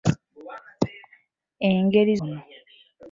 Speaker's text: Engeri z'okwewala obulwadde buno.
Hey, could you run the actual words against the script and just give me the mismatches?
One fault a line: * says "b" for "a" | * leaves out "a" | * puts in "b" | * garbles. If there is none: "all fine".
* leaves out "z'okwewala obulwadde"